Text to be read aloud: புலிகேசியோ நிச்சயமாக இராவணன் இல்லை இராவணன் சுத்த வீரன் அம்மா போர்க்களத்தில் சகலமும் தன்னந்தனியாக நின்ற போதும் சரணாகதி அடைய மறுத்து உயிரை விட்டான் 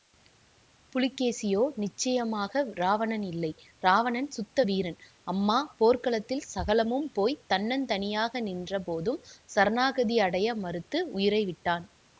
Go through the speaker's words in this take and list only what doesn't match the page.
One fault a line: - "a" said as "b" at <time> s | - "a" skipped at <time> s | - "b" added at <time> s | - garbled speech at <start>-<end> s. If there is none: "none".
- "போய்" added at 7.1 s